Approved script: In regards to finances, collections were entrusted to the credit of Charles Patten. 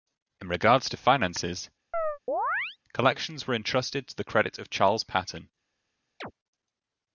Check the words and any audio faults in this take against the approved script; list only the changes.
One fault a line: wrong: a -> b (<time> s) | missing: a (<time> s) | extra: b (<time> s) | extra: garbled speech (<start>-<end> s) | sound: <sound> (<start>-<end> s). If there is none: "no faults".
sound: chirp (1.9-2.8 s)
sound: chirp (6.2-6.3 s)